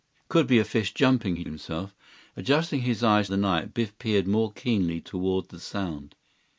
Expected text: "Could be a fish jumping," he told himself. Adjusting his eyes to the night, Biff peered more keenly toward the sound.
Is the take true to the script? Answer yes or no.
no